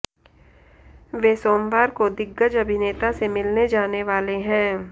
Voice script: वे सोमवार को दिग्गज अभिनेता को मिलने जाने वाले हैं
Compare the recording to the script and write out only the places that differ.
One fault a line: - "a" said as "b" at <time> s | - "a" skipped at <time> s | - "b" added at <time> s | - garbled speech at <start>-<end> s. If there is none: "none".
- "को" said as "से" at 3.1 s